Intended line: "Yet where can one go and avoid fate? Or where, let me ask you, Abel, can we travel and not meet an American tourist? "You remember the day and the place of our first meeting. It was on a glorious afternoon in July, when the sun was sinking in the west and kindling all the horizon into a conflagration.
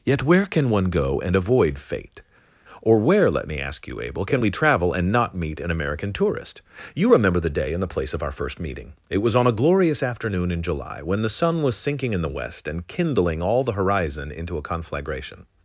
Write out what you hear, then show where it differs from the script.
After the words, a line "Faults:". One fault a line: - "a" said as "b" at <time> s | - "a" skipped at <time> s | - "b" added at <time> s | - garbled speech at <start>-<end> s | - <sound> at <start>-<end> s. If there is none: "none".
"Yet where can one go and avoid fate? Or where, let me ask you, Abel, can we travel and not meet an American tourist? "You remember the day and the place of our first meeting. It was on a glorious afternoon in July, when the sun was sinking in the west and kindling all the horizon into a conflagration.
Faults:
none